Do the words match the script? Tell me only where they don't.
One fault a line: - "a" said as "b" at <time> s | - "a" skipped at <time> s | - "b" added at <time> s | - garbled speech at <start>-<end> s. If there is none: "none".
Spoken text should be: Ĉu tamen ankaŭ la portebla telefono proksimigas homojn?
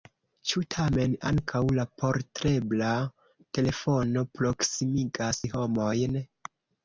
none